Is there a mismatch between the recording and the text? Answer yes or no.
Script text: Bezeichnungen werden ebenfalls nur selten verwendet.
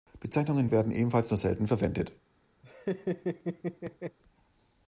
no